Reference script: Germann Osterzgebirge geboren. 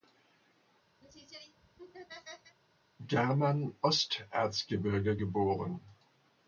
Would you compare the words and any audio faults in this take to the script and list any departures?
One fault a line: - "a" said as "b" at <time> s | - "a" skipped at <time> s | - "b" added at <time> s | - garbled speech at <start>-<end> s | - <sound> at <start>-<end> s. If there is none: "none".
- laugh at 1.0-2.6 s